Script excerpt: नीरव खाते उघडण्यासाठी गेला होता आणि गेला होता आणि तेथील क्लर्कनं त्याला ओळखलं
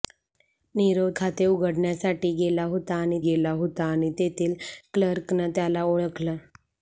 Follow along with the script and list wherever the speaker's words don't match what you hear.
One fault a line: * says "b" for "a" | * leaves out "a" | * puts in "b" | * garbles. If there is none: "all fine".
all fine